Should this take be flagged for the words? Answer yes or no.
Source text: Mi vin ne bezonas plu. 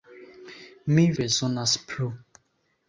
yes